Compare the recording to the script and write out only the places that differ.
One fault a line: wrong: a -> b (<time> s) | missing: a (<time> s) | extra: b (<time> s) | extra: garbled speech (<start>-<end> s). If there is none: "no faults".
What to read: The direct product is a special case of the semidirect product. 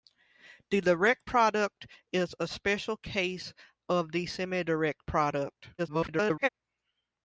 extra: garbled speech (5.8-6.5 s)